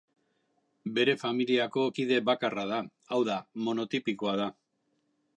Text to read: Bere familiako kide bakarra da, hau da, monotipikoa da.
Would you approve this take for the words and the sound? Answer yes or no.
yes